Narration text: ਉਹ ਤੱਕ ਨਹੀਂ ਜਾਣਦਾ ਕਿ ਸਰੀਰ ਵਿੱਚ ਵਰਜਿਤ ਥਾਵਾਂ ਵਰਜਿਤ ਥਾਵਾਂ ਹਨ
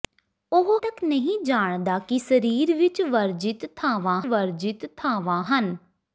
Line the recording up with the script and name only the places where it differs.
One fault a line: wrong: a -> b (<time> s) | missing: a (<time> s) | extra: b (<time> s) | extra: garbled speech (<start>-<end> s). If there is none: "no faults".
no faults